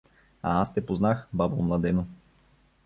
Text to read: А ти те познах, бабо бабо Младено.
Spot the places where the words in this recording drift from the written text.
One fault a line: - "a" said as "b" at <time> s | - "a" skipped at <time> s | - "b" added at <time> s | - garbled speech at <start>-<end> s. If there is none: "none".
- "ти" said as "аз" at 0.6 s
- "бабо" skipped at 1.6 s